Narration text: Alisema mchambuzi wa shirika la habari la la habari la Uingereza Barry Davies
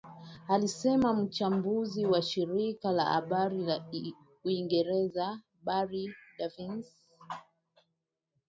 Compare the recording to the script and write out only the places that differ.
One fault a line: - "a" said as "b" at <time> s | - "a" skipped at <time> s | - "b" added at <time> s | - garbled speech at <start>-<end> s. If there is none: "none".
- "la habari la" skipped at 3.9 s